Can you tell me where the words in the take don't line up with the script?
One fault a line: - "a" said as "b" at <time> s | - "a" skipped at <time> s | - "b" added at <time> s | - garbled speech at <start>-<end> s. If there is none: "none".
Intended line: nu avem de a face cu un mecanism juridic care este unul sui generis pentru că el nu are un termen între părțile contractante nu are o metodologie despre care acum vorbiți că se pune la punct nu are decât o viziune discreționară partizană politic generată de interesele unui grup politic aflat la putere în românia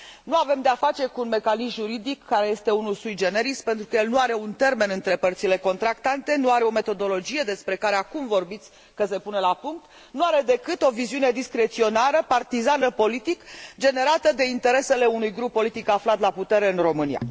none